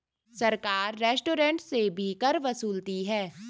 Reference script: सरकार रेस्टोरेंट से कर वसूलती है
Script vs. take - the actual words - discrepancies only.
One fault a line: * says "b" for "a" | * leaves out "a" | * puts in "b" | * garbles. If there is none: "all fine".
* puts in "भी"